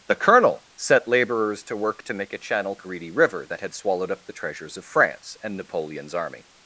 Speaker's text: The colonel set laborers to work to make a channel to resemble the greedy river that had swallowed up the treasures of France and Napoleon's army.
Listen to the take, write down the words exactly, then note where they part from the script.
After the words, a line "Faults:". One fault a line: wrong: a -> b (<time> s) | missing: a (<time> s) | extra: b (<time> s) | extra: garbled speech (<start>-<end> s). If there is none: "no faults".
The colonel set laborers to work to make a channel greedy river that had swallowed up the treasures of France and Napoleon's army.
Faults:
missing: to resemble the (2.8 s)